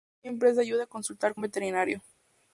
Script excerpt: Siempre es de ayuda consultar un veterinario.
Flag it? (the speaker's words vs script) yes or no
no